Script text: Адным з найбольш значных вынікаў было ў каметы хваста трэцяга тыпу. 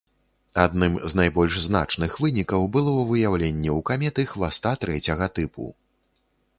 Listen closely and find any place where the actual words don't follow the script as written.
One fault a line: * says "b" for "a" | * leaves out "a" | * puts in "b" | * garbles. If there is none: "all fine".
* puts in "выяўленне"